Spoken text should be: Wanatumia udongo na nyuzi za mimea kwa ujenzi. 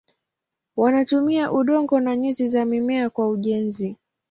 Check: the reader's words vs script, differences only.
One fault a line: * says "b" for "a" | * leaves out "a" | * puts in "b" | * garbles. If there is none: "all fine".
all fine